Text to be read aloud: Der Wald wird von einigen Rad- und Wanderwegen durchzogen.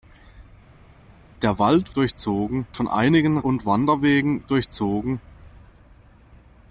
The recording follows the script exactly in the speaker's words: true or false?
false